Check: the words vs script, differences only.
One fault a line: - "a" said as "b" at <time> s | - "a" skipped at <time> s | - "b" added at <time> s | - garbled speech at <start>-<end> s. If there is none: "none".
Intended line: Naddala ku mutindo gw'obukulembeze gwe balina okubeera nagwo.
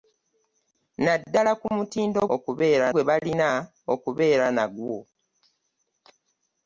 - "gw'obukulembeze" said as "okubeera" at 2.3 s